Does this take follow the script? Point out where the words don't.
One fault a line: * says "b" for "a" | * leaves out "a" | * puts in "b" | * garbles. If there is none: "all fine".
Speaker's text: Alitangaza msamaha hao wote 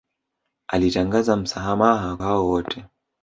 all fine